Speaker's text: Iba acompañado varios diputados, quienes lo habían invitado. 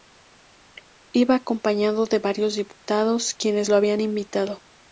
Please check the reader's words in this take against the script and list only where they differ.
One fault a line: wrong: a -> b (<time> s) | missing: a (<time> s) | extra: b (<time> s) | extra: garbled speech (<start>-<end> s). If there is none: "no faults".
extra: de (2.0 s)